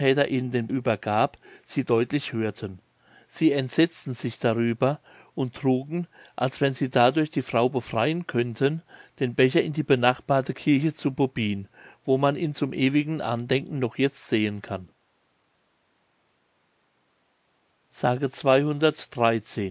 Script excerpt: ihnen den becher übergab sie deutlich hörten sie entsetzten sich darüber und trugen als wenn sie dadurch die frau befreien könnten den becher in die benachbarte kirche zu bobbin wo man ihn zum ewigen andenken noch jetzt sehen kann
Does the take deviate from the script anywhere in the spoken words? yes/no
yes